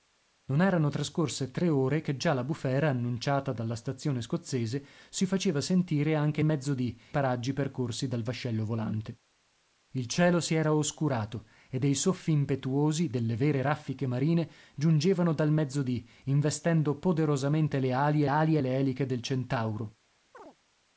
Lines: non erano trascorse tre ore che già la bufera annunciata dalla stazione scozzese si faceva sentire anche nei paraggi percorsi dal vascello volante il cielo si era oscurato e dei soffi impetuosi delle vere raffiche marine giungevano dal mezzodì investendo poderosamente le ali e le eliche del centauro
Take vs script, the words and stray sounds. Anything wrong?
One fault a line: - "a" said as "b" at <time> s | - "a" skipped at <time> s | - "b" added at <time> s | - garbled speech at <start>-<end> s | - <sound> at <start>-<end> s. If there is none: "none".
- "nei" said as "mezzodì" at 6.4 s
- "ali" added at 18.3 s
- chirp at 20.3-20.6 s